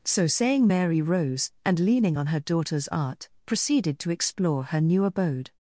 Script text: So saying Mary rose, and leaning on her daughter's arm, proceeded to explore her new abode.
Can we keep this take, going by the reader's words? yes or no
no